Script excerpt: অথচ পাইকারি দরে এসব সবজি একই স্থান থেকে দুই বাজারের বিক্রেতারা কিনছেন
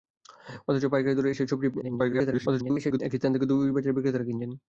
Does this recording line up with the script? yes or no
no